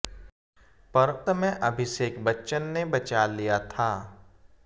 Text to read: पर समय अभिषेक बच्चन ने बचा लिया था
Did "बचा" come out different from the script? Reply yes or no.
no